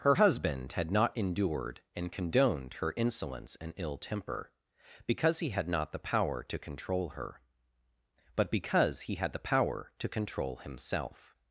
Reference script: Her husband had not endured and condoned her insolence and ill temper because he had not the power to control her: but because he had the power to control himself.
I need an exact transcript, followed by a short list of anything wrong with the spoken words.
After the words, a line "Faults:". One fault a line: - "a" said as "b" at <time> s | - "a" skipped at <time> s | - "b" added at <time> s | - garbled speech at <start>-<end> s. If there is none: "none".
Her husband had not endured and condoned her insolence and ill temper because he had not the power to control her: but because he had the power to control himself.
Faults:
none